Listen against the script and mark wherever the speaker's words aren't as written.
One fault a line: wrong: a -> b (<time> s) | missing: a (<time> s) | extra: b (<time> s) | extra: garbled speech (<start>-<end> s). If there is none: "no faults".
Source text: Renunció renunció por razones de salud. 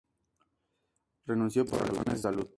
missing: renunció (1.6 s)